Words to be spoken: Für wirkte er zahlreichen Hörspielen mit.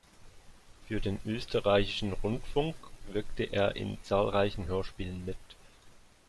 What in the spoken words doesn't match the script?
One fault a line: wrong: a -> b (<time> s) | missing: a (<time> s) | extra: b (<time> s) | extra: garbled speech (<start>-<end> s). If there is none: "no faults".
extra: den Österreichischen Rundfunk (1.0 s)
extra: in (3.7 s)